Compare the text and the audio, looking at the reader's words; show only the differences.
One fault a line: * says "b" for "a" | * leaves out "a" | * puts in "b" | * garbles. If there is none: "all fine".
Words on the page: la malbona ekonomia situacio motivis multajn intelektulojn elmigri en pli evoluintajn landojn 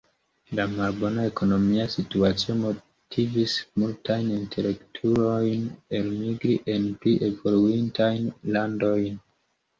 all fine